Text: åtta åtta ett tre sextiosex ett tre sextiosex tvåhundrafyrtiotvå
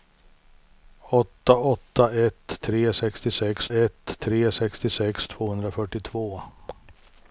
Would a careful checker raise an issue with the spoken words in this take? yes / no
no